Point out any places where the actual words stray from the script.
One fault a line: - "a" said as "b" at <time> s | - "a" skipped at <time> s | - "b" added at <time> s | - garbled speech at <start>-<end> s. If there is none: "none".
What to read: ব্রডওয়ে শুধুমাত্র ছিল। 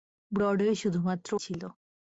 none